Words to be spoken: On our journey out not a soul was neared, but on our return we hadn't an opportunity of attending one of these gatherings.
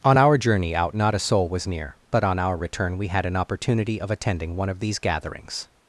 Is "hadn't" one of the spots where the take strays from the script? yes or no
yes